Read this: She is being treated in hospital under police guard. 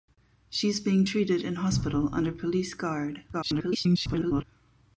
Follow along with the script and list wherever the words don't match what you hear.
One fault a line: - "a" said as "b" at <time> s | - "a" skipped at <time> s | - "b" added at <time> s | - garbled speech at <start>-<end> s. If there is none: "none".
- garbled speech at 3.3-4.4 s